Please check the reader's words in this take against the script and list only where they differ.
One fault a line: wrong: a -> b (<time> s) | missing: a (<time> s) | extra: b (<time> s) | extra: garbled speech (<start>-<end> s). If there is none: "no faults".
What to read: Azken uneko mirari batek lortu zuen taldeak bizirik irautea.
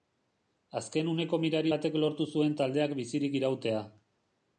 no faults